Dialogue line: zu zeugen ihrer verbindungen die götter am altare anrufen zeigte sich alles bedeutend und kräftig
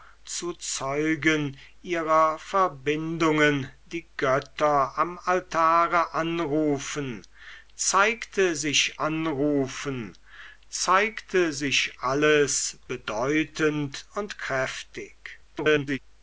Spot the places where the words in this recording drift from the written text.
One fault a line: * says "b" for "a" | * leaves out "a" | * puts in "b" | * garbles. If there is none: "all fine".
* puts in "anrufen zeigte sich"
* garbles